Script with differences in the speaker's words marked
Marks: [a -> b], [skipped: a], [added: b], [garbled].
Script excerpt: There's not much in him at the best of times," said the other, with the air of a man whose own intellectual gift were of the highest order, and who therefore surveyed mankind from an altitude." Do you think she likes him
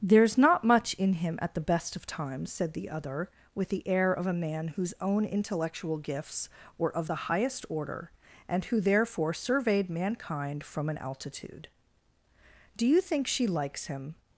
There's not much in him at the best of times," said the other, with the air of a man whose own intellectual [gift -> gifts] were of the highest order, and who therefore surveyed mankind from an altitude." Do you think she likes him